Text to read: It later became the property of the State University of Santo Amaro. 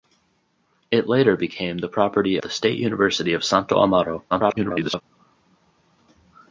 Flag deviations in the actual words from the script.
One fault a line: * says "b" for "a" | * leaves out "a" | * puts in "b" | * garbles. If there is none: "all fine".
* leaves out "of"
* garbles